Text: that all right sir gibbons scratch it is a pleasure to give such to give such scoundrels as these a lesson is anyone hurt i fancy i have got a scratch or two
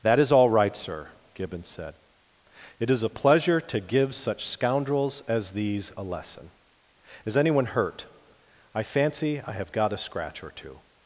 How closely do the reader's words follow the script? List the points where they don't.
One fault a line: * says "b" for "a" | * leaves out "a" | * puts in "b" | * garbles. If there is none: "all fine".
* puts in "is"
* says "said" for "scratch"
* leaves out "to give such"